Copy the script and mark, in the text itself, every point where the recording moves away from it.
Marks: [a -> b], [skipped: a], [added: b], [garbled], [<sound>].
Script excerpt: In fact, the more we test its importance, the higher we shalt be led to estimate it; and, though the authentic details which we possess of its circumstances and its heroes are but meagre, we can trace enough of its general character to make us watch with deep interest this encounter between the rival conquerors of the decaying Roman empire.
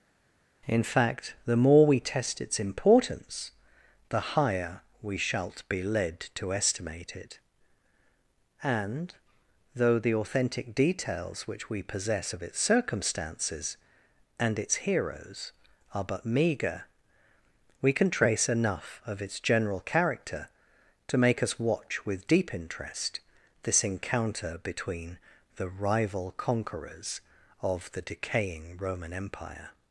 In fact, the more we test its importance, the higher we shalt be led to estimate it; and, though the authentic details which we possess of its circumstances and its heroes are but meagre, we can trace enough of its general character to make us watch with deep interest this encounter between the rival conquerors of the decaying Roman empire.